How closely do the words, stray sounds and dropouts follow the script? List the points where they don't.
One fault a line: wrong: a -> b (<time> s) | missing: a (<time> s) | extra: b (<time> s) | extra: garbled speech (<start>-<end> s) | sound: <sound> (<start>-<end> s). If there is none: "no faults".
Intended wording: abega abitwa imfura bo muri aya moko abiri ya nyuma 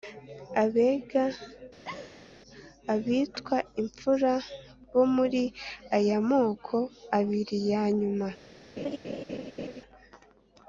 sound: laugh (1.8-2.3 s)
sound: laugh (8.8-9.8 s)